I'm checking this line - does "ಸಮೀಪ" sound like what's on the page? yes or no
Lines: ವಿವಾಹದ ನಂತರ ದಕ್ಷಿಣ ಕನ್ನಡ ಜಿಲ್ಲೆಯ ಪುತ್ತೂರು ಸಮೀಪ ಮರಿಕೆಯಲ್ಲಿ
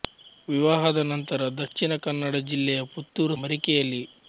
no